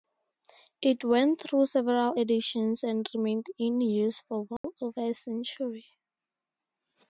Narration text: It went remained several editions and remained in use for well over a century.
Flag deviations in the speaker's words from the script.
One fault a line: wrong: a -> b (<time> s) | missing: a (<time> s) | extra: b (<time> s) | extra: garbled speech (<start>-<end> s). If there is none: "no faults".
wrong: remained -> through (1.4 s)